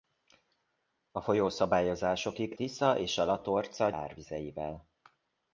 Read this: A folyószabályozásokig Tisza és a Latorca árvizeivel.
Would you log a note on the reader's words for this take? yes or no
no